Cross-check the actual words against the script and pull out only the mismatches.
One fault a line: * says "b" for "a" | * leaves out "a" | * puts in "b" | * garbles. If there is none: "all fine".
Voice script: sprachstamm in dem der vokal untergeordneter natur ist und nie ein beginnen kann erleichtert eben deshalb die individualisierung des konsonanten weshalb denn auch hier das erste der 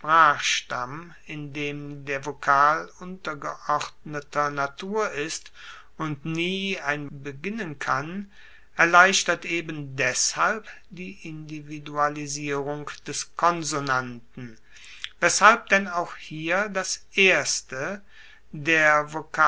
all fine